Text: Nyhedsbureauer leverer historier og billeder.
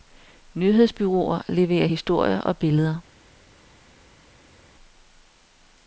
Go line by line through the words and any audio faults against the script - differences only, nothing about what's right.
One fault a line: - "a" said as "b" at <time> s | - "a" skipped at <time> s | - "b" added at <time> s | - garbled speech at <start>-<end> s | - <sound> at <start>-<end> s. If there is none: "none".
none